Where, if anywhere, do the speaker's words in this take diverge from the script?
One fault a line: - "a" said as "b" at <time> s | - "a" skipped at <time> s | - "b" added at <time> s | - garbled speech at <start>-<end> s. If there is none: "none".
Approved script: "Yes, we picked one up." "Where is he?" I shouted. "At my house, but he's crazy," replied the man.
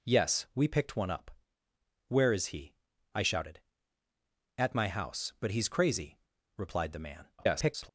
- garbled speech at 7.4-7.9 s